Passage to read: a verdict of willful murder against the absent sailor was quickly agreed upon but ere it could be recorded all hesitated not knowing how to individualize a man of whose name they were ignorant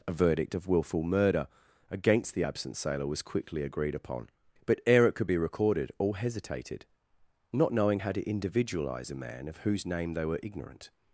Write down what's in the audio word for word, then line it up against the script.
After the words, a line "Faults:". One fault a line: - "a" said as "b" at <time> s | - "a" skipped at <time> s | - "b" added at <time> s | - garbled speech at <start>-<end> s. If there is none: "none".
a verdict of willful murder against the absent sailor was quickly agreed upon but ere it could be recorded all hesitated not knowing how to individualize a man of whose name they were ignorant
Faults:
none